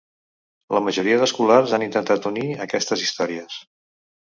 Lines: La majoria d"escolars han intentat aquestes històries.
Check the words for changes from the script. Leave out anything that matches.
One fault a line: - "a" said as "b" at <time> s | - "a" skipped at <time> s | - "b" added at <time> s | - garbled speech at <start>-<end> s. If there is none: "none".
- "unir" added at 2.3 s